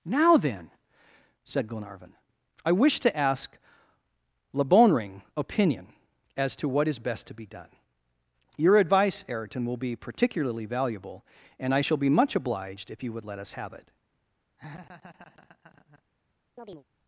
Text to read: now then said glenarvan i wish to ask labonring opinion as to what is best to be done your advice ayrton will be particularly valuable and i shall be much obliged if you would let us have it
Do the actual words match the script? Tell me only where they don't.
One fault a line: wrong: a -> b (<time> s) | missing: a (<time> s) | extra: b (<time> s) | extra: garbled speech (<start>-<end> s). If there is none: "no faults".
no faults